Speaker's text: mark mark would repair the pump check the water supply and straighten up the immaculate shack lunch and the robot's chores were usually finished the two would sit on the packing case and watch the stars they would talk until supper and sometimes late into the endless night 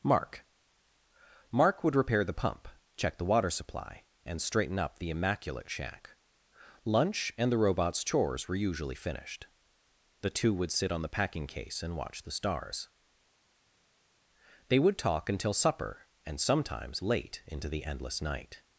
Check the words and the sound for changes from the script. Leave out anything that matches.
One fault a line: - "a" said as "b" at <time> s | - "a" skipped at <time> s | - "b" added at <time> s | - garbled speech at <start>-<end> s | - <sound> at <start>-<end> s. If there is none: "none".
none